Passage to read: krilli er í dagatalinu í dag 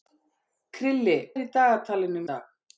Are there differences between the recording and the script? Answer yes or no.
no